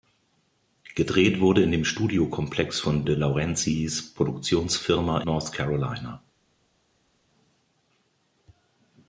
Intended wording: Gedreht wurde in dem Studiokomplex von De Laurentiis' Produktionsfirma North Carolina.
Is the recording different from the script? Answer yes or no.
no